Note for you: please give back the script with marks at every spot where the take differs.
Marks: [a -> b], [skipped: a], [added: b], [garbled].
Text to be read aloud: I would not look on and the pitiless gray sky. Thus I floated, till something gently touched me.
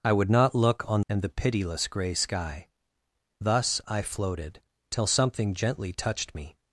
I would not look on and the pitiless gray sky. Thus I floated, till something gently touched me.